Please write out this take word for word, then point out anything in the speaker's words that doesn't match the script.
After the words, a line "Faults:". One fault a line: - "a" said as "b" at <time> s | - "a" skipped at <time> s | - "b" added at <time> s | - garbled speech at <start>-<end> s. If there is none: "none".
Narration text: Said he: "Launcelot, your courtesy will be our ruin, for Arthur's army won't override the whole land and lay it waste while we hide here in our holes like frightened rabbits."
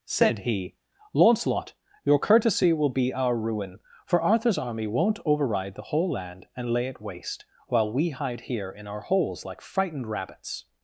Said he: "Launcelot, your courtesy will be our ruin, for Arthur's army won't override the whole land and lay it waste while we hide here in our holes like frightened rabbits."
Faults:
none